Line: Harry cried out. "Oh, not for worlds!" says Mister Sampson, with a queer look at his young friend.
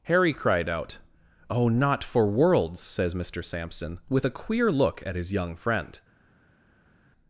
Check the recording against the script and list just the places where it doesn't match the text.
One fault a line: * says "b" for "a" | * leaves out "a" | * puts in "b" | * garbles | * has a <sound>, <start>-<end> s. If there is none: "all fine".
all fine